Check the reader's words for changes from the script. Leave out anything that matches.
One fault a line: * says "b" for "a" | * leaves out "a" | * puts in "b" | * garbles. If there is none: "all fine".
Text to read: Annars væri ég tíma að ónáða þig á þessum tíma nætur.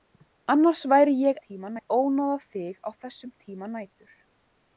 all fine